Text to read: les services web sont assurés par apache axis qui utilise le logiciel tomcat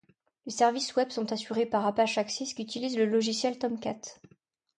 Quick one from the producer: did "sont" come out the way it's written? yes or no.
yes